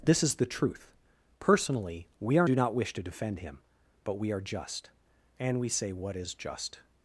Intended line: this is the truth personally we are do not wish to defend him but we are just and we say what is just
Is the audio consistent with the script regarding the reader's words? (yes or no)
yes